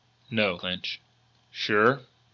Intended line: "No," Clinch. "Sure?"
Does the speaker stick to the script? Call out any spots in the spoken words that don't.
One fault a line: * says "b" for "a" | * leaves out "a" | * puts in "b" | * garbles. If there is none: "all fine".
all fine